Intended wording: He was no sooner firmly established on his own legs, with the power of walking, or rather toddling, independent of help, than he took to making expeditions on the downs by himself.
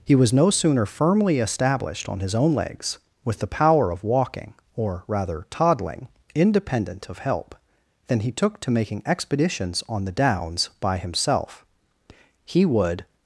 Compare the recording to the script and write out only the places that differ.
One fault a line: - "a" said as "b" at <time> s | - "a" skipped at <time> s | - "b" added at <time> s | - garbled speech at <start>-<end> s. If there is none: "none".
- "He would" added at 12.4 s